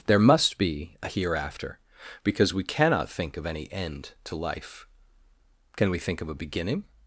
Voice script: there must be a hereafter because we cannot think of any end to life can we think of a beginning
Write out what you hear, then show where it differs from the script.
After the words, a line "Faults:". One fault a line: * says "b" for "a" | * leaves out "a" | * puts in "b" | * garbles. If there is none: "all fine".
there must be a hereafter because we cannot think of any end to life can we think of a beginning
Faults:
all fine